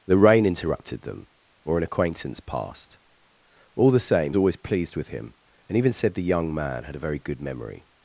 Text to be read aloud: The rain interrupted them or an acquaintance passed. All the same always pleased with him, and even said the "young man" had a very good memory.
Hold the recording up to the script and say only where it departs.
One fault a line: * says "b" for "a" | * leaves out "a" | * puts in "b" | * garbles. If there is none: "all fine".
all fine